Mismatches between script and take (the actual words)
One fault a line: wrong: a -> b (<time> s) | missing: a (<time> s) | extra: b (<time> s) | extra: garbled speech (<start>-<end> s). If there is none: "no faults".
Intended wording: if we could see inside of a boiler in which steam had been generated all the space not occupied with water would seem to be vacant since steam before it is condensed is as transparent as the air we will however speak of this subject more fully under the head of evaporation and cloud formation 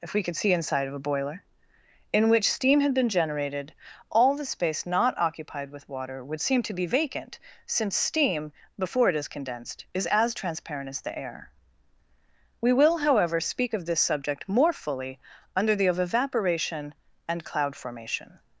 missing: head (15.8 s)